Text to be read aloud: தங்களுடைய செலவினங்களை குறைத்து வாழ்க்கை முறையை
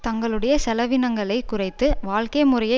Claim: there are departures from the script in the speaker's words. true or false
false